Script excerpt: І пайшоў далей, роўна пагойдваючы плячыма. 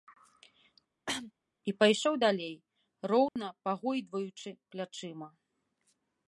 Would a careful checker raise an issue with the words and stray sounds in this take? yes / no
yes